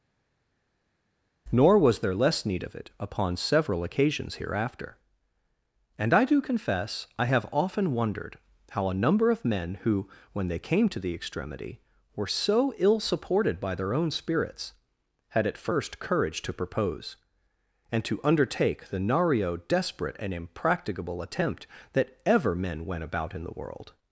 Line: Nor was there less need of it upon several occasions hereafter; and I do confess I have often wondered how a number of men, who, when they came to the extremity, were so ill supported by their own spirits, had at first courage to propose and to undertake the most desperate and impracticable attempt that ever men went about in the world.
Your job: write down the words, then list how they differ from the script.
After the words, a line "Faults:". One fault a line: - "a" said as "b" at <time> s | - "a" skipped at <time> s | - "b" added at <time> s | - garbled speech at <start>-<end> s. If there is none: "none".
Nor was there less need of it upon several occasions hereafter; and I do confess I have often wondered how a number of men, who, when they came to the extremity, were so ill supported by their own spirits, had at first courage to propose and to undertake the nario desperate and impracticable attempt that ever men went about in the world.
Faults:
- "most" said as "nario" at 19.0 s